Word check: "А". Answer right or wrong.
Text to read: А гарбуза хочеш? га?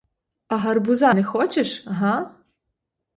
right